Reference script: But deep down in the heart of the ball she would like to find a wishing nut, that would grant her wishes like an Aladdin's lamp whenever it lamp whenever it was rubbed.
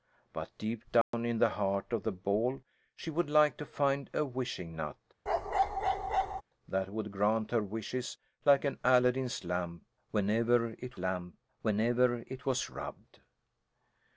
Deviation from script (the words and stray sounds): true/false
true